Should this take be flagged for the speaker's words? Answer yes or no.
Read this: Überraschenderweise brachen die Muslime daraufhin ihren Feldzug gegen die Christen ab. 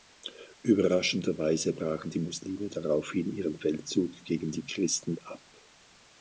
no